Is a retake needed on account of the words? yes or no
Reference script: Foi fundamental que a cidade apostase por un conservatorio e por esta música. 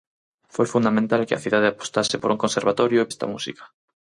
yes